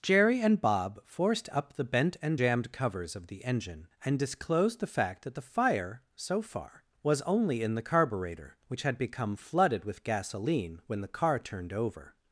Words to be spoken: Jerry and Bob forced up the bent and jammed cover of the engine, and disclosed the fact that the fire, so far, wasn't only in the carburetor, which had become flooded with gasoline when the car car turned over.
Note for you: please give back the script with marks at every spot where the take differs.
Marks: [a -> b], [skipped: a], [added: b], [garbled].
Jerry and Bob forced up the bent and jammed [cover -> covers] of the engine, and disclosed the fact that the fire, so far, [wasn't -> was] only in the carburetor, which had become flooded with gasoline when the car [skipped: car] turned over.